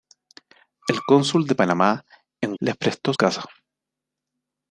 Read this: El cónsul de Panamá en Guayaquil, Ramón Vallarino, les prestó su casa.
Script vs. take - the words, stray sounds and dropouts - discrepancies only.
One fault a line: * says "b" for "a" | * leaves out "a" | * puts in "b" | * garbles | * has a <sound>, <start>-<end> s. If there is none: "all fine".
* leaves out "Guayaquil Ramón Vallarino"
* leaves out "su"